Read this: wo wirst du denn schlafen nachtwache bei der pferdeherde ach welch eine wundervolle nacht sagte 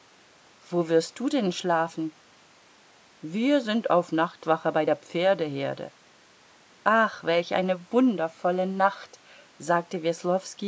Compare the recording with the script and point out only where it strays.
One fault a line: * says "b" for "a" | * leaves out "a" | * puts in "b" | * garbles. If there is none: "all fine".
* puts in "wir sind auf"